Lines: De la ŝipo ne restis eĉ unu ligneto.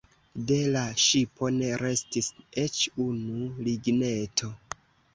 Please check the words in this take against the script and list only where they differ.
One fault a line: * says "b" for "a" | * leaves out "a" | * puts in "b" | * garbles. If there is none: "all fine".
all fine